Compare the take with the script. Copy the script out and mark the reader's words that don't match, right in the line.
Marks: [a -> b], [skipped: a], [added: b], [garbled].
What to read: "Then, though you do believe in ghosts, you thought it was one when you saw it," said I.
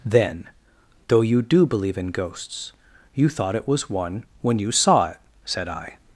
"Then, though you do believe in ghosts, you thought it was one when you saw it," said I.